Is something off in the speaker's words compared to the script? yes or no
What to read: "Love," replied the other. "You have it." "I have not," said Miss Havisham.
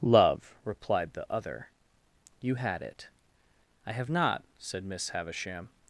yes